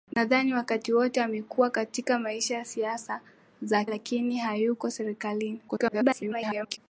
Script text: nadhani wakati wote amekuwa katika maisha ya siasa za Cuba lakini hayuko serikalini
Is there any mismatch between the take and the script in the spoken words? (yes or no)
yes